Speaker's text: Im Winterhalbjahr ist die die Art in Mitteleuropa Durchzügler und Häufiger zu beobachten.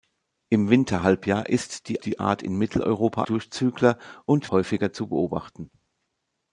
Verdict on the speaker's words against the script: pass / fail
pass